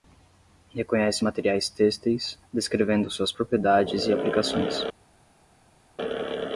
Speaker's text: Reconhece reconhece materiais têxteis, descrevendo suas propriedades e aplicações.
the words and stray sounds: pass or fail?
fail